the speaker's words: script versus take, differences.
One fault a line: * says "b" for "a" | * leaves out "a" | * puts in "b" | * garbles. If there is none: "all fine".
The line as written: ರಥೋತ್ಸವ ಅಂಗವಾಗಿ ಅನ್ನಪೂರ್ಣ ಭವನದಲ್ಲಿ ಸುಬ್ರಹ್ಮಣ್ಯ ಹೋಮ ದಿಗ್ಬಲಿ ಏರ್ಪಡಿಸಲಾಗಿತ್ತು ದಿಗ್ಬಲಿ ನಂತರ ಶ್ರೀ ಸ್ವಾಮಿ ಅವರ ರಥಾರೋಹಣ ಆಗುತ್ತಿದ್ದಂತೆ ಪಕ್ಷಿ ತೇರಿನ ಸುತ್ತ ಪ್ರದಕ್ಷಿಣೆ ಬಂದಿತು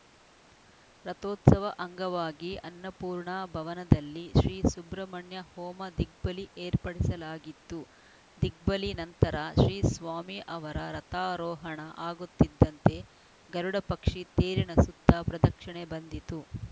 * puts in "ಶ್ರೀ"
* puts in "ಗರುಡ"